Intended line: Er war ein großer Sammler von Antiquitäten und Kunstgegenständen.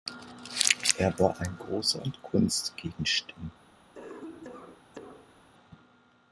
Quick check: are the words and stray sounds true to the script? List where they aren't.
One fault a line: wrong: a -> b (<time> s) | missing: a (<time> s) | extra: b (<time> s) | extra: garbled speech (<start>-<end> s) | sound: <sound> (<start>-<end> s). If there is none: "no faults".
missing: Sammler von Antiquitäten (2.0 s)
sound: cough (4.0-5.5 s)